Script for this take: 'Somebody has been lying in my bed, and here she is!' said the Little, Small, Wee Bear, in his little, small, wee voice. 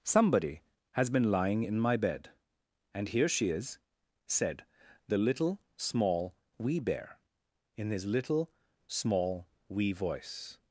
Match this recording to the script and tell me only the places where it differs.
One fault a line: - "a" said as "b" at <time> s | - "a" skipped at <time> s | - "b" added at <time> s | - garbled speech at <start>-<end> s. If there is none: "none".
none